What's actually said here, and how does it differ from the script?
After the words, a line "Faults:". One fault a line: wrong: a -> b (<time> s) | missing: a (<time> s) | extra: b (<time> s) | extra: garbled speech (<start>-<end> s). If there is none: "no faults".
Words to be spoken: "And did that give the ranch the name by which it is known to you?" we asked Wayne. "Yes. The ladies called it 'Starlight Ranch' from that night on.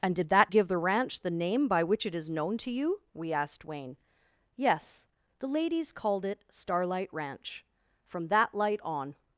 "And did that give the ranch the name by which it is known to you?" we asked Wayne. "Yes. The ladies called it 'Starlight Ranch' from that light on.
Faults:
wrong: night -> light (8.5 s)